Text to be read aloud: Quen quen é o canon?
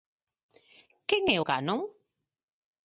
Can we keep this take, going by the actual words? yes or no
no